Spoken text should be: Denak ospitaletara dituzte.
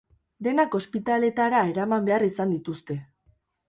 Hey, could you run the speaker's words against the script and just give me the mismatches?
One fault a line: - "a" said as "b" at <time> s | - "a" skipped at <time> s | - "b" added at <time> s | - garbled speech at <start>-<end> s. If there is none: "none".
- "eraman behar izan" added at 1.8 s